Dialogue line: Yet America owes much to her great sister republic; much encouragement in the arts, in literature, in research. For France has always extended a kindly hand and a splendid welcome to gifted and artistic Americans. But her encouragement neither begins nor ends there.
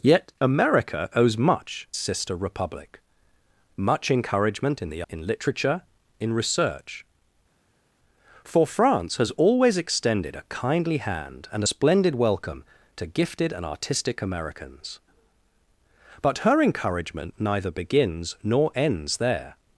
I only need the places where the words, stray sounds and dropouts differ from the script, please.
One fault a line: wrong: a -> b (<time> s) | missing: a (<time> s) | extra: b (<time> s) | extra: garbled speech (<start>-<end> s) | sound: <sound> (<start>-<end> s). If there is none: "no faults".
missing: to her great (1.9 s)
missing: arts (5.0 s)
missing: a (11.6 s)